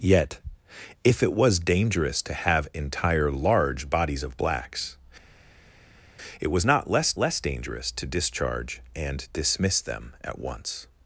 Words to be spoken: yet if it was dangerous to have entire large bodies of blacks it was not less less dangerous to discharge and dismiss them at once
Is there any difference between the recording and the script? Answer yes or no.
no